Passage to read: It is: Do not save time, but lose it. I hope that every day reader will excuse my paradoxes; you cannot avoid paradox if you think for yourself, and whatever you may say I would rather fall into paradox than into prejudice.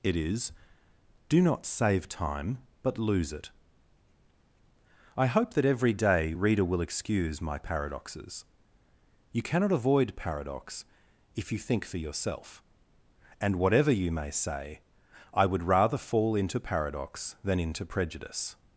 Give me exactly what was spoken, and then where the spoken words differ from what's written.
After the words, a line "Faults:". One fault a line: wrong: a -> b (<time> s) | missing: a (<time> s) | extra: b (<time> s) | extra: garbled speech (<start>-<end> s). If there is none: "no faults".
It is: Do not save time, but lose it. I hope that every day reader will excuse my paradoxes; you cannot avoid paradox if you think for yourself, and whatever you may say I would rather fall into paradox than into prejudice.
Faults:
no faults